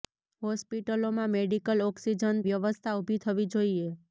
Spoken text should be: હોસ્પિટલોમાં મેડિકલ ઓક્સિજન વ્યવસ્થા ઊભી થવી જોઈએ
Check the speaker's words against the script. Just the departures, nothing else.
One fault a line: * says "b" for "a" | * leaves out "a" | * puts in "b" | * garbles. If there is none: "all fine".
all fine